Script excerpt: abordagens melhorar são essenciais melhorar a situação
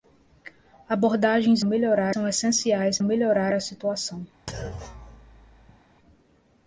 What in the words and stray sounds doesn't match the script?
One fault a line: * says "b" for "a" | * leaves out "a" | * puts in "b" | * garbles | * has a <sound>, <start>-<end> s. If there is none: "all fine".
* has a thud, 4.5-5.8 s